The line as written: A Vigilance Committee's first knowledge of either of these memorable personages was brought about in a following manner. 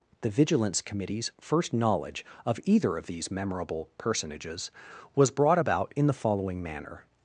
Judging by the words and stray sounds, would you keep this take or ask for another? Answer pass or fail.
fail